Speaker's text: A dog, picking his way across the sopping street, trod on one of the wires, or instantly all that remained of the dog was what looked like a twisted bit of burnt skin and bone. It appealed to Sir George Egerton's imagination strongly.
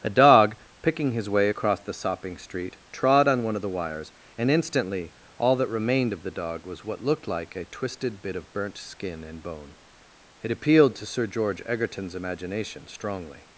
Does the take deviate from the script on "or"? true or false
true